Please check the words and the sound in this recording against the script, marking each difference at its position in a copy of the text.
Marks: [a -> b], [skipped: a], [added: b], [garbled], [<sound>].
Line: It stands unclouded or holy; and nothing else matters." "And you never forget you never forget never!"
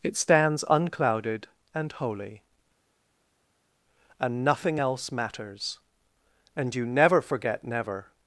It stands unclouded [or -> and] holy; and nothing else matters." "And you never forget [skipped: you never forget] never!"